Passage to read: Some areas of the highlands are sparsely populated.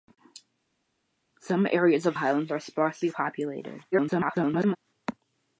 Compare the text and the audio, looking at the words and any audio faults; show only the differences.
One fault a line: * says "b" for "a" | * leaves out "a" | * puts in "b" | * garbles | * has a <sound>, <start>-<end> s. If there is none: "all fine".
* leaves out "the"
* garbles